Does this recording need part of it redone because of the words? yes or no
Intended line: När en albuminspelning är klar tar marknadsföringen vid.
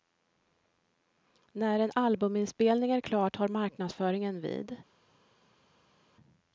no